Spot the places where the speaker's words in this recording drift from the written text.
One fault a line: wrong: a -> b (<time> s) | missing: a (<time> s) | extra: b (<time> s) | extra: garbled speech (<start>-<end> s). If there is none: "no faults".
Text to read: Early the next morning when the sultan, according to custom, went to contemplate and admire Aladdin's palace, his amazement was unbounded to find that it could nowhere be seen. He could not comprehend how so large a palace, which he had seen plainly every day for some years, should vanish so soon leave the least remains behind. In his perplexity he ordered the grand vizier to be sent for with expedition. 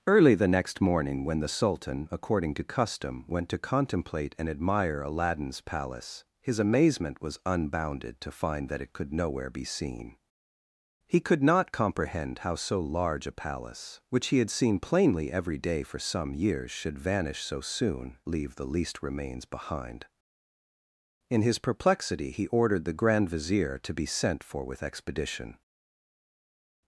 no faults